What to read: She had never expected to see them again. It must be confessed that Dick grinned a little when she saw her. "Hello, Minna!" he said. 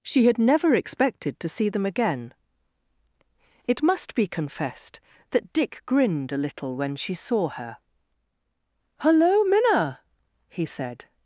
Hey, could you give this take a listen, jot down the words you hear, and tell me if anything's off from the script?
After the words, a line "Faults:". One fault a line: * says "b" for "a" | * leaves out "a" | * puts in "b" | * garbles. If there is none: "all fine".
She had never expected to see them again. It must be confessed that Dick grinned a little when she saw her. "Hello, Minna!" he said.
Faults:
all fine